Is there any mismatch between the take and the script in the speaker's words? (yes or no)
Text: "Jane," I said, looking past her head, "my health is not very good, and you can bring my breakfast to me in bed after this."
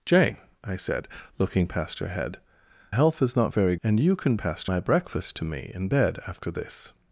yes